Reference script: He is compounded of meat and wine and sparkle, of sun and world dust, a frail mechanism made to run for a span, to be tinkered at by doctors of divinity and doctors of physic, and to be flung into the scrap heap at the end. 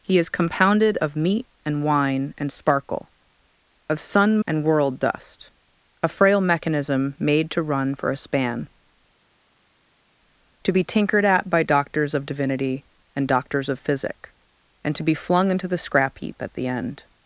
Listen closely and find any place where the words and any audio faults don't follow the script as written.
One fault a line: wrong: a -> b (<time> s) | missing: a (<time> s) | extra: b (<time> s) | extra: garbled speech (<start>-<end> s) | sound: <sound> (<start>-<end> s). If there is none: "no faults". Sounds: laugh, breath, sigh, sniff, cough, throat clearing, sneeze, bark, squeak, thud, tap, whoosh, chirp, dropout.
no faults